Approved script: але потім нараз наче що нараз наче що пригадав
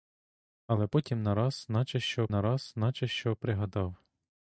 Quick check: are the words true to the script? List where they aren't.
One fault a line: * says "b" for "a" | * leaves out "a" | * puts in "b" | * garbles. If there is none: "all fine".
all fine